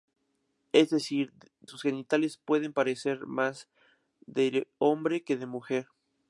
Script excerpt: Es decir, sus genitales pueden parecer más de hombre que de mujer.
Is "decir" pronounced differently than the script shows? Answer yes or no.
no